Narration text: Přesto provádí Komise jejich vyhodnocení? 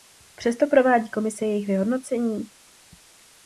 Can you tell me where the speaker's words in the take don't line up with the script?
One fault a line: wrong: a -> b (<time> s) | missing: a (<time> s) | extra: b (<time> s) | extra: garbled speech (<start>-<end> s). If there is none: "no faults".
no faults